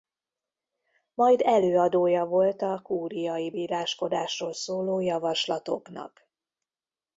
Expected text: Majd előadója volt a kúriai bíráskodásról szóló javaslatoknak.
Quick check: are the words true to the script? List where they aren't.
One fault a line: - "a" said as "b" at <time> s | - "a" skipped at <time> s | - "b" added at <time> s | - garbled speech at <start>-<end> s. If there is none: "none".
none